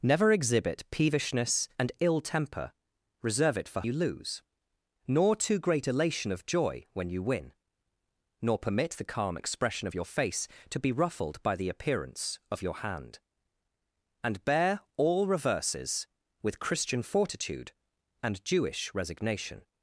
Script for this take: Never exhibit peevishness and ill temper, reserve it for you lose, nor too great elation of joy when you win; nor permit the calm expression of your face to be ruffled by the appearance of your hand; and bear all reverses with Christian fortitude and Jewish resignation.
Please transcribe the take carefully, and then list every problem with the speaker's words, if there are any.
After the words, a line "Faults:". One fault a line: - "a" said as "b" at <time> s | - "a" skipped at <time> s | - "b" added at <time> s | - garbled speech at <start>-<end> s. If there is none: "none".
Never exhibit peevishness and ill temper, reserve it for you lose, nor too great elation of joy when you win; nor permit the calm expression of your face to be ruffled by the appearance of your hand; and bear all reverses with Christian fortitude and Jewish resignation.
Faults:
none